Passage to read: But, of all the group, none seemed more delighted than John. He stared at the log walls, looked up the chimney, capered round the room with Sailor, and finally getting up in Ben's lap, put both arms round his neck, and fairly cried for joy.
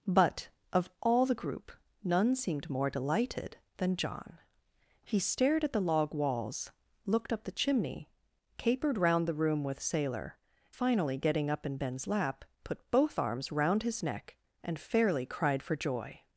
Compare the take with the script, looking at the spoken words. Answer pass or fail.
fail